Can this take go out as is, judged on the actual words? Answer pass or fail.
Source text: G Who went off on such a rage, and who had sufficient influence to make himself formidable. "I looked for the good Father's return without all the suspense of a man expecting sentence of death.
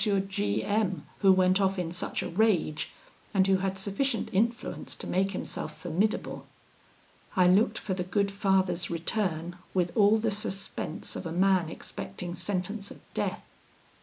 fail